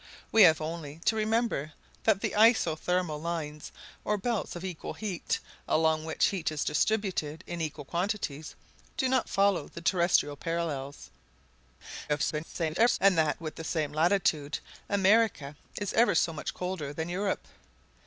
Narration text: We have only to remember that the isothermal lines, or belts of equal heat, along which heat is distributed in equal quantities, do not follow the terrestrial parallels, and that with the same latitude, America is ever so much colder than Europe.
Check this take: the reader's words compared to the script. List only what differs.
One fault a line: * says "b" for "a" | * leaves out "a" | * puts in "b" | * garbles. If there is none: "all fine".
* garbles